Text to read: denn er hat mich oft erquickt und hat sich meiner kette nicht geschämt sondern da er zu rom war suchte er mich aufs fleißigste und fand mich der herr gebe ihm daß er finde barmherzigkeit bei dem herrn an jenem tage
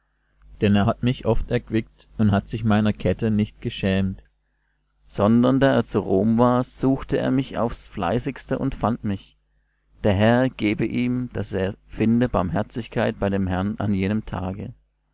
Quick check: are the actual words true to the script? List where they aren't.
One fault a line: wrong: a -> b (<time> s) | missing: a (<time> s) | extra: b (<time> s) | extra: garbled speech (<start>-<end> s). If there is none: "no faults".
no faults